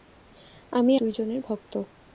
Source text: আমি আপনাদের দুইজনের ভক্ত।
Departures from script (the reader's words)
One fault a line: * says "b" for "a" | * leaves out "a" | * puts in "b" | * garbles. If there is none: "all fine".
* leaves out "আপনাদের"